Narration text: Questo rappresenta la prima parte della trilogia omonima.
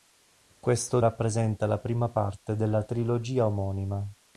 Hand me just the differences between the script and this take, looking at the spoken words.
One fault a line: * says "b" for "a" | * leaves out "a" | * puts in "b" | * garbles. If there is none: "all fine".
all fine